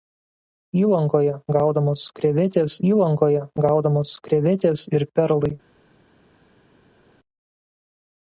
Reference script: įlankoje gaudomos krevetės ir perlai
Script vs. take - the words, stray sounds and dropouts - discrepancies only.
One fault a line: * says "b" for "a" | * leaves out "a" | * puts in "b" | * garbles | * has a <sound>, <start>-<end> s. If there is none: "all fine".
* puts in "įlankoje gaudomos krevetės"